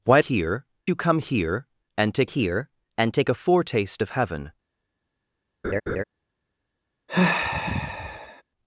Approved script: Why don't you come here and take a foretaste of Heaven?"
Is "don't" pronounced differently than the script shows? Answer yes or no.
yes